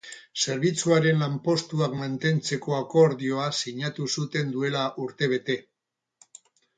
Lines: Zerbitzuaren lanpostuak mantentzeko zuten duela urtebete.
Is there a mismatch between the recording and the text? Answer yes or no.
yes